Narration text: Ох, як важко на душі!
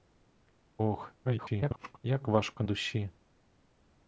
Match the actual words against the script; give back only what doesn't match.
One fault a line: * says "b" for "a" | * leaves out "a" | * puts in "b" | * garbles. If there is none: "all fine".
* garbles
* leaves out "на"